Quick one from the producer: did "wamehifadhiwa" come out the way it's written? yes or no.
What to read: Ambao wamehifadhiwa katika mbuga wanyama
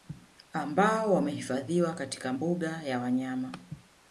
yes